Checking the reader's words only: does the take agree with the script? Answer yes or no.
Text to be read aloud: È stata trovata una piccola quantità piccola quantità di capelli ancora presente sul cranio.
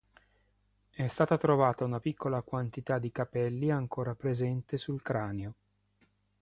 no